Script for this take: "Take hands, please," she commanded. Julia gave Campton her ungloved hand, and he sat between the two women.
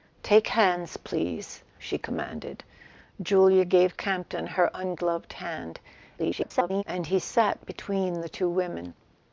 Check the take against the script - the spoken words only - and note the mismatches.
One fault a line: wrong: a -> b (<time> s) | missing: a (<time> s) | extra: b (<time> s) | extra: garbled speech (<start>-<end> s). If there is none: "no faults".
extra: garbled speech (6.2-6.8 s)